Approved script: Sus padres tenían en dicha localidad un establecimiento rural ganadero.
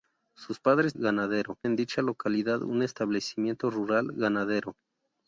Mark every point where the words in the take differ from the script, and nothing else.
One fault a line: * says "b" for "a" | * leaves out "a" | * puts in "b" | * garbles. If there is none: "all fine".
* says "ganadero" for "tenían"